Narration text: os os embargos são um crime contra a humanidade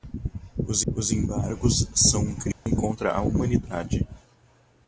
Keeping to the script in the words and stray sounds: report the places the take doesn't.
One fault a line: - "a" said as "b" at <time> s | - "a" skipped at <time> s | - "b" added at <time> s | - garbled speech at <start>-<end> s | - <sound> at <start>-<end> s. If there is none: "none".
- dropout at 2.5-2.7 s